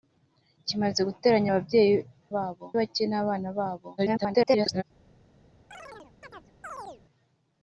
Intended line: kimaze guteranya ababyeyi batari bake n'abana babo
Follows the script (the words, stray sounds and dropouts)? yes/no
no